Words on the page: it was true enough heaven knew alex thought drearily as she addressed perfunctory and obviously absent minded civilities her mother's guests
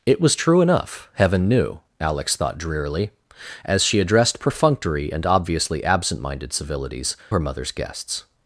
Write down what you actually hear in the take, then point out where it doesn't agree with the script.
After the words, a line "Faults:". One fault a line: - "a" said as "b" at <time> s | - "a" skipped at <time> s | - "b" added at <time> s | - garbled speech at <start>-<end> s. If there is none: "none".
it was true enough heaven knew alex thought drearily as she addressed perfunctory and obviously absent minded civilities her mother's guests
Faults:
none